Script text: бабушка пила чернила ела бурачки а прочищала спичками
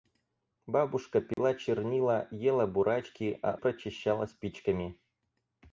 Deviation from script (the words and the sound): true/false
true